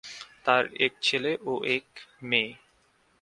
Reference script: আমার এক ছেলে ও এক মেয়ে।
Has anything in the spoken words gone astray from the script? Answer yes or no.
yes